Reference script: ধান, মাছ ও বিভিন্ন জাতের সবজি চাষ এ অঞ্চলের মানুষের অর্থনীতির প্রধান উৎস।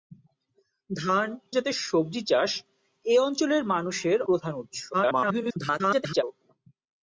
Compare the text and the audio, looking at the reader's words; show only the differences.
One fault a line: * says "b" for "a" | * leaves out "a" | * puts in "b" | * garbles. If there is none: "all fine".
* leaves out "মাছ ও বিভিন্ন"
* leaves out "অর্থনীতির"
* garbles